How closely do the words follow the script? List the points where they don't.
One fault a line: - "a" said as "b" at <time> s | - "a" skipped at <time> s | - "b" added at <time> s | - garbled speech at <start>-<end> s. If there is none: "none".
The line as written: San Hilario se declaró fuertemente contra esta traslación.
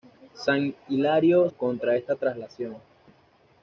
- "se declaró fuertemente" skipped at 1.5 s